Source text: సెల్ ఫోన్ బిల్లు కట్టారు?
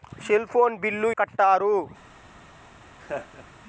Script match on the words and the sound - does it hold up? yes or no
no